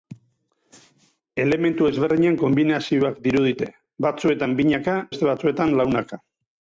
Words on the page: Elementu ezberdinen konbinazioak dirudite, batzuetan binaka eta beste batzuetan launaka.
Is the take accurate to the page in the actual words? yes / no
no